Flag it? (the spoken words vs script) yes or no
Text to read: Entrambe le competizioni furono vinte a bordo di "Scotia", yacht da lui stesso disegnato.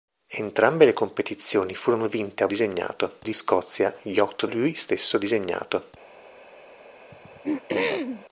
yes